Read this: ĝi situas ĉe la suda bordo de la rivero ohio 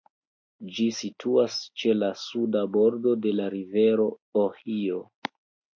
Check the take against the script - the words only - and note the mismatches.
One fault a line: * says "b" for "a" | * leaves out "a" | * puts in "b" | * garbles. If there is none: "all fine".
all fine